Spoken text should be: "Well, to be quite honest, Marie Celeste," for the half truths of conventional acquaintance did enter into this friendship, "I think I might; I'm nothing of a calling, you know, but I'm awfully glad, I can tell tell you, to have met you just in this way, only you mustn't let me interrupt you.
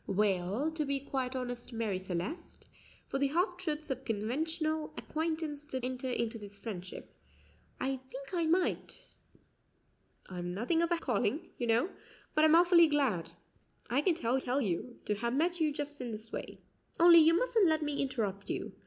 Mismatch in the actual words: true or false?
false